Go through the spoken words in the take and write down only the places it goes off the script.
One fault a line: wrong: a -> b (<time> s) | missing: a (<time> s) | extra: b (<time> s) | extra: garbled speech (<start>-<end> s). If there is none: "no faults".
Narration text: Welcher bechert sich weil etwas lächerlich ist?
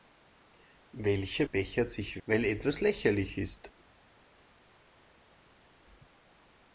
no faults